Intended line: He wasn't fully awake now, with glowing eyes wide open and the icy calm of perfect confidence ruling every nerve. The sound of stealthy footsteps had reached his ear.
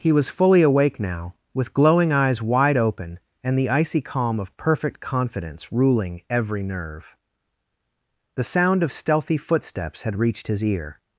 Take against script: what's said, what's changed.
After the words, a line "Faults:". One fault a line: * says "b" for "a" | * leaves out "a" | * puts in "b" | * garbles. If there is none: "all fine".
He was fully awake now, with glowing eyes wide open and the icy calm of perfect confidence ruling every nerve. The sound of stealthy footsteps had reached his ear.
Faults:
* says "was" for "wasn't"